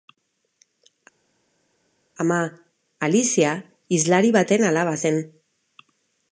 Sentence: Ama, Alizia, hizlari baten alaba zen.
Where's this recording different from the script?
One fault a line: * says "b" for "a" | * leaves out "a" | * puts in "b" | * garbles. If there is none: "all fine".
all fine